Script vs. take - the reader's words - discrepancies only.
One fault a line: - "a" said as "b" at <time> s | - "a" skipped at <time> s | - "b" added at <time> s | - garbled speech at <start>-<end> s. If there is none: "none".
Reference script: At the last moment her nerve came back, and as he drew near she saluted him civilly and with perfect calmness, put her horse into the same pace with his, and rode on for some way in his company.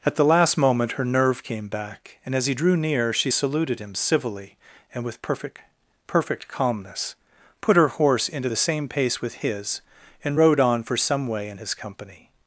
- "perfect" added at 6.1 s